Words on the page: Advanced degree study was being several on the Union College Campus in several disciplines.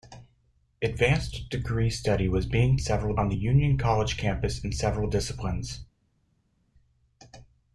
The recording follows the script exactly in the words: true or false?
true